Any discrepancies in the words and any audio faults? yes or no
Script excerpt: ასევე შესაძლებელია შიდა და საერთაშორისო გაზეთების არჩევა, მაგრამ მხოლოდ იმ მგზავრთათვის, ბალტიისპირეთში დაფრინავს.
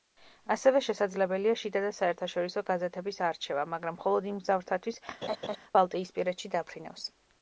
yes